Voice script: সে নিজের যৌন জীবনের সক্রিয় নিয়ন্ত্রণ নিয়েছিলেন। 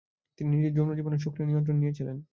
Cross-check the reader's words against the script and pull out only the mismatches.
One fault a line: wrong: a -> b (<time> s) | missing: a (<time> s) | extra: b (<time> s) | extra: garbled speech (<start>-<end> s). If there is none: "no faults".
wrong: সে -> তিনি (0.4 s)